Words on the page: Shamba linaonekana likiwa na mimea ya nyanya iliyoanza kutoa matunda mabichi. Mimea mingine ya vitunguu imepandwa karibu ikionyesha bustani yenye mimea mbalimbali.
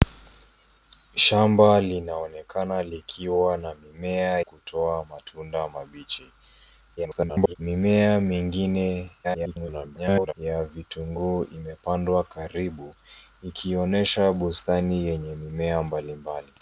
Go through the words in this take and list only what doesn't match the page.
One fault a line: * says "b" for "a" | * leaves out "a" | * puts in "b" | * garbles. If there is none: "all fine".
* leaves out "ya nyanya iliyoanza"
* garbles
* garbles